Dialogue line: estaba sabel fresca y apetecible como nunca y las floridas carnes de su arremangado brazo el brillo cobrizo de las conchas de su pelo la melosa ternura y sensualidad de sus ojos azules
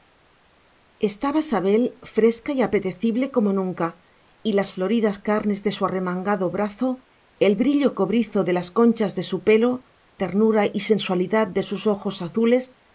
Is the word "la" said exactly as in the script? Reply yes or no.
no